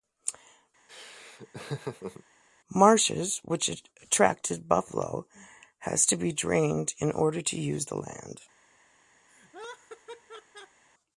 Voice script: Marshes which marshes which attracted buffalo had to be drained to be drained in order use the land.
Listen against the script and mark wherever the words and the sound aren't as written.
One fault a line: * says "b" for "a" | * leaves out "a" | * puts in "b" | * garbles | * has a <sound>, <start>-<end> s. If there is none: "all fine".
* has a laugh, 0.9-2.2 s
* leaves out "marshes which"
* leaves out "to be drained"
* puts in "to"
* has a laugh, 9.3-10.8 s